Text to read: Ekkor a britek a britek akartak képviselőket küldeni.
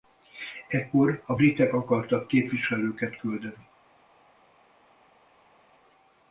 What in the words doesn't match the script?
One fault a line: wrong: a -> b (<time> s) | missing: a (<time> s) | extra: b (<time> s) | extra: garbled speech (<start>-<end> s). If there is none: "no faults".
missing: a britek (1.7 s)